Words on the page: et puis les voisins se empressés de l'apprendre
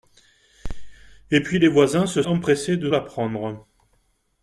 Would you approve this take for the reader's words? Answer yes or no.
yes